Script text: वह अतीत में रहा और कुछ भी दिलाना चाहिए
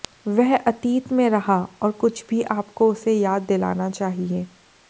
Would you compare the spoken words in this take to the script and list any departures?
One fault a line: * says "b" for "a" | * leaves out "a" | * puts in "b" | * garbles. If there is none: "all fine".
* puts in "आपको उसे याद"